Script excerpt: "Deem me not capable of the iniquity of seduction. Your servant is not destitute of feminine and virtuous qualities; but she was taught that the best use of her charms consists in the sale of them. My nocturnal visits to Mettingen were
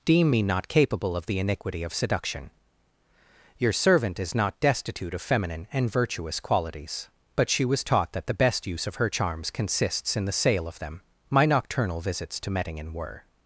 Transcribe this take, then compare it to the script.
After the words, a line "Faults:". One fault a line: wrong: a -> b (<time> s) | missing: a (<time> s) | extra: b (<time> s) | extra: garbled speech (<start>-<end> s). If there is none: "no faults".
"Deem me not capable of the iniquity of seduction. Your servant is not destitute of feminine and virtuous qualities; but she was taught that the best use of her charms consists in the sale of them. My nocturnal visits to Mettingen were
Faults:
no faults